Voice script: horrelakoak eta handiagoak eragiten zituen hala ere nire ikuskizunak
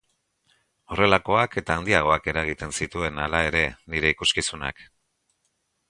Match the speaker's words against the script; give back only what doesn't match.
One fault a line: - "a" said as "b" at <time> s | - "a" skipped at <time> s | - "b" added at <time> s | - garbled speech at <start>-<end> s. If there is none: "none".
none